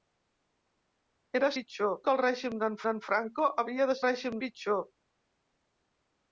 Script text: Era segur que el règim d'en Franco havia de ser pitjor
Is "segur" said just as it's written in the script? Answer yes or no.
no